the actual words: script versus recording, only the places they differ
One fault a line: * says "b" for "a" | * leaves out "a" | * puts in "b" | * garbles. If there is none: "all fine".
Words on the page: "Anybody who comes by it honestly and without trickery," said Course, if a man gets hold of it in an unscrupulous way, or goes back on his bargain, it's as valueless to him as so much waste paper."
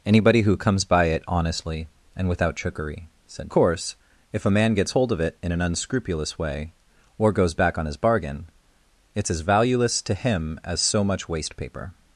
all fine